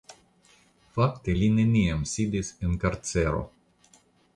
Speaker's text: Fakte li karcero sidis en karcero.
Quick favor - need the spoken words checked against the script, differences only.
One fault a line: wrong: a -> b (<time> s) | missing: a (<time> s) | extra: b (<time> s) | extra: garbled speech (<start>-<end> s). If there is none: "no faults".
wrong: karcero -> neniam (1.6 s)